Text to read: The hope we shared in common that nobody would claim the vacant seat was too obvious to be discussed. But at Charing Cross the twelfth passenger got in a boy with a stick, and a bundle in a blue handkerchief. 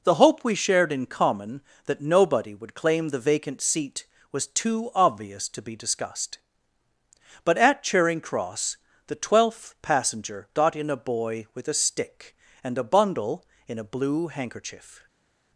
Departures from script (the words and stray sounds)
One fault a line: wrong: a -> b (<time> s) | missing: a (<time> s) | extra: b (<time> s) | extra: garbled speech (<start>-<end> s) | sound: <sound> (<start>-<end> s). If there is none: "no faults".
no faults